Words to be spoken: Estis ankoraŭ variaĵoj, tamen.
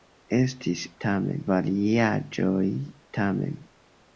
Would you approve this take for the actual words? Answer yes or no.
no